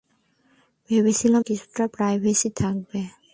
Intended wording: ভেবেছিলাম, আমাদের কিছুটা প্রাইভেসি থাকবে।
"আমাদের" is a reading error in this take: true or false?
true